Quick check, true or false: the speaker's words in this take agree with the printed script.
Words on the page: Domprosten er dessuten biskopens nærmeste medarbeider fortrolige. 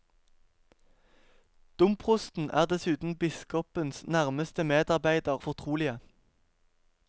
true